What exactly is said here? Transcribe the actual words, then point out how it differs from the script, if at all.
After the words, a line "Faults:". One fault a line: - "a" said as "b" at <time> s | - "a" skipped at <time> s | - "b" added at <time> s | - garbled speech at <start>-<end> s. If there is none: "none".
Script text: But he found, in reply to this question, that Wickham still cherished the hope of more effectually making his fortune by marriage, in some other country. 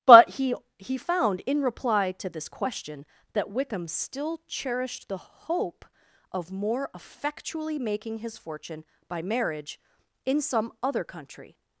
But he he found, in reply to this question, that Wickham still cherished the hope of more effectually making his fortune by marriage, in some other country.
Faults:
- "he" added at 0.8 s